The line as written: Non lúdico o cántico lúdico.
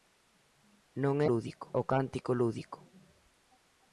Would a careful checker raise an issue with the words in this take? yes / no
no